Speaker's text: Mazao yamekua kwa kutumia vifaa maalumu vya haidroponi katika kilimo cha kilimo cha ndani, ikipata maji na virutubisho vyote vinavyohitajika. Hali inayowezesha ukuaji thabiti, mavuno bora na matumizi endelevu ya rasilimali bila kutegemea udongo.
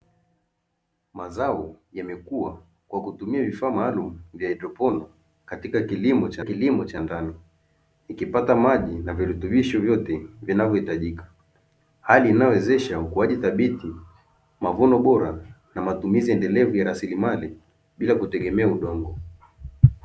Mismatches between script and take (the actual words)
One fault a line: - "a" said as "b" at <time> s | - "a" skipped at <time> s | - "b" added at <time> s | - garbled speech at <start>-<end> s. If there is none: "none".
none